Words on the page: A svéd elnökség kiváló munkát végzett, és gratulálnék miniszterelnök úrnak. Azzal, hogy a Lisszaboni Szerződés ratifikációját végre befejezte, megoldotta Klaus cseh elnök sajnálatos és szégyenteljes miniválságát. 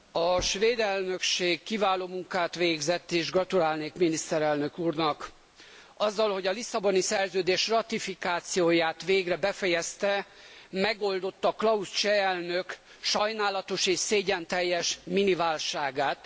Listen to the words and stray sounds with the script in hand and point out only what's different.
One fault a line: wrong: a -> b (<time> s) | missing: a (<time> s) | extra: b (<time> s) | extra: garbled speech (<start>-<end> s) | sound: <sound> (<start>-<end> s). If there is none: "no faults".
no faults